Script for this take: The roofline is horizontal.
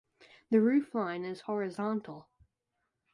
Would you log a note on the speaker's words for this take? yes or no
no